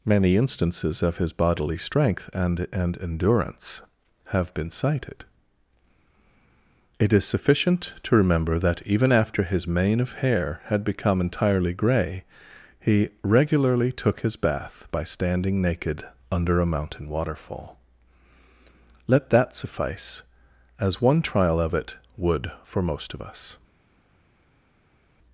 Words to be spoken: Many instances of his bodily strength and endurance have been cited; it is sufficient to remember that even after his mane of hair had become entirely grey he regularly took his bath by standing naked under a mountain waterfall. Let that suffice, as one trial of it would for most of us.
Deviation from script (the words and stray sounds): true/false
true